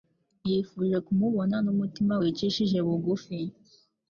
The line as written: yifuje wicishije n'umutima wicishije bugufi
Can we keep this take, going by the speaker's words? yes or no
no